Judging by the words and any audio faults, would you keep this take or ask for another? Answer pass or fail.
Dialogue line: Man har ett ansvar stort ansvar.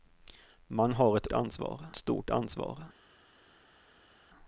pass